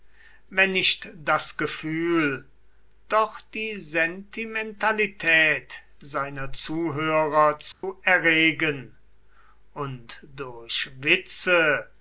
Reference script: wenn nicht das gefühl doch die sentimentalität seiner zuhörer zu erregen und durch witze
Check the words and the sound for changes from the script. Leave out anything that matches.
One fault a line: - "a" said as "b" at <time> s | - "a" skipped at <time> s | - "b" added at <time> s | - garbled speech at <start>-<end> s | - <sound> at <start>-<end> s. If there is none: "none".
- dropout at 7.7-7.8 s